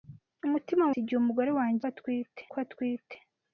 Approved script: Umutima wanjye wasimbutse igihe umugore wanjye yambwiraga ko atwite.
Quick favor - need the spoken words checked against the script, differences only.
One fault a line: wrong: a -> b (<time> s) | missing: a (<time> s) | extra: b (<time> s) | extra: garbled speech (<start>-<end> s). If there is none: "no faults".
missing: wanjye wasimbutse (0.8 s)
wrong: yambwiraga -> atwite (1.9 s)